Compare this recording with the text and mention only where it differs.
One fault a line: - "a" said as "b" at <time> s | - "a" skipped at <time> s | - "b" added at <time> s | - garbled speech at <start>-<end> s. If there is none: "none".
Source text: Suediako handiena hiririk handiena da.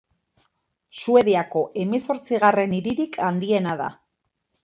- "handiena" said as "hemezortzigarren" at 1.8 s